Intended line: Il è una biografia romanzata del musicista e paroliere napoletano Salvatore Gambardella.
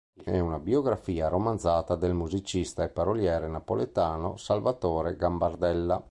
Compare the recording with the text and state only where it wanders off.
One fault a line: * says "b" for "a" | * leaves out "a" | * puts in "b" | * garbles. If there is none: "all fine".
all fine